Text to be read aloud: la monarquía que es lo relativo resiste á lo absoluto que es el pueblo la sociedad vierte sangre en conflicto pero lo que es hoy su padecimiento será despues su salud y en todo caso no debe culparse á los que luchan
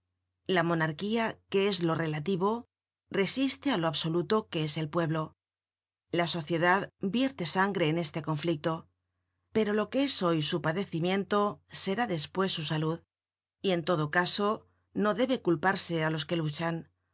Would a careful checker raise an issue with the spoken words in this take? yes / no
yes